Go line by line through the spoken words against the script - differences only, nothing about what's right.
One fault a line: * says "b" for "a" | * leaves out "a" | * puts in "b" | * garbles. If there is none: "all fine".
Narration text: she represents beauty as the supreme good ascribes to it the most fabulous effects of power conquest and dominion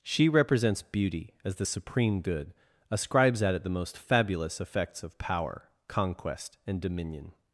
* says "at" for "to"